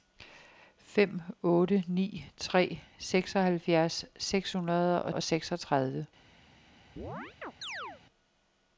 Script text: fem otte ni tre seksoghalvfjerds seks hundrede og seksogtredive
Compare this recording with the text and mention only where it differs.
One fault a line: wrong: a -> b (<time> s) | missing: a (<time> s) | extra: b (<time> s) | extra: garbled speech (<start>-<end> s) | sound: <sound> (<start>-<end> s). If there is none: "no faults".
extra: og (5.1 s)
sound: chirp (7.0-8.0 s)